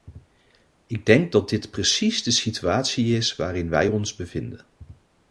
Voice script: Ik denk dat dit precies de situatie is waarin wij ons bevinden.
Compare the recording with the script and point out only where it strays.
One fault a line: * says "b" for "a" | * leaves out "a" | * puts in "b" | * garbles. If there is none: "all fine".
all fine